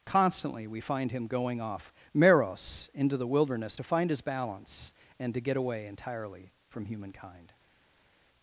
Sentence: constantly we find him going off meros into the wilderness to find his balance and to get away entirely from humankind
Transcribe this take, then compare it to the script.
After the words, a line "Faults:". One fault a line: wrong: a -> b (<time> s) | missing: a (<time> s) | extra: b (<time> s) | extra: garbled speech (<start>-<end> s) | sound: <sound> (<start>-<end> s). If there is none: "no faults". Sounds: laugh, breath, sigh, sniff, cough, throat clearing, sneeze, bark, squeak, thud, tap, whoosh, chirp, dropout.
constantly we find him going off meros into the wilderness to find his balance and to get away entirely from humankind
Faults:
no faults